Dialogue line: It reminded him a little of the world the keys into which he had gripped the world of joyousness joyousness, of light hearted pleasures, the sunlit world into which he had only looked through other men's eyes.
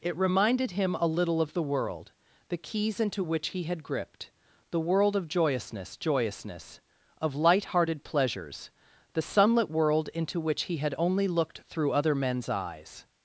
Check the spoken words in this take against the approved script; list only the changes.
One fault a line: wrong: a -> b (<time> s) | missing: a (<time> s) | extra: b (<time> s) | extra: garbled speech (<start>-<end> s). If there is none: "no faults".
no faults